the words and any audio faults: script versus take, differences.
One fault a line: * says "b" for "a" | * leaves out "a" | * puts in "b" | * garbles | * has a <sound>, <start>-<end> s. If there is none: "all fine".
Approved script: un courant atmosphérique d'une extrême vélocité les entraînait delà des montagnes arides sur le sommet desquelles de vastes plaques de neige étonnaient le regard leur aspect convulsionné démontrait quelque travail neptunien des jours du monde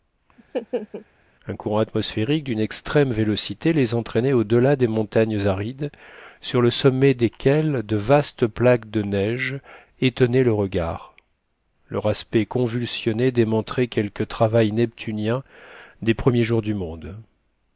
* has a laugh, 0.4-1.1 s
* puts in "au"
* puts in "premiers"